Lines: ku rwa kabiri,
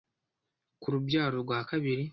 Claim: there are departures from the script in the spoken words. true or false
true